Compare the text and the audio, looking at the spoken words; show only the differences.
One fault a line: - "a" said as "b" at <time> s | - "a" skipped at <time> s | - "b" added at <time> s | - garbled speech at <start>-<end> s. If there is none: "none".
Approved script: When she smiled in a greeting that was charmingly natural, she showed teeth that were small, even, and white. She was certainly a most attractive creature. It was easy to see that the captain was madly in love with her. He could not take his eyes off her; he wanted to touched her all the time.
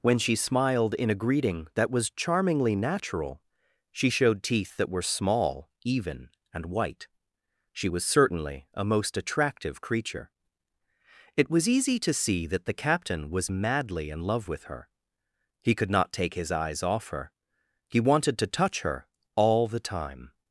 - "touched" said as "touch" at 18.5 s